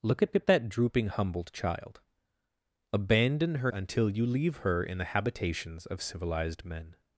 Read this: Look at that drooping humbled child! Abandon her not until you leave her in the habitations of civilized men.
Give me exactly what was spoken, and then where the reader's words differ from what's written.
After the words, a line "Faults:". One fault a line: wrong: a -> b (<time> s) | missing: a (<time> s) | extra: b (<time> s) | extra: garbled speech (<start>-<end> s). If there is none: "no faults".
Look at at that drooping humbled child! Abandon her until you leave her in the habitations of civilized men.
Faults:
extra: at (0.3 s)
missing: not (3.7 s)